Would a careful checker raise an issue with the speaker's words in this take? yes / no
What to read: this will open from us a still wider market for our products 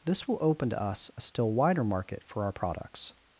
yes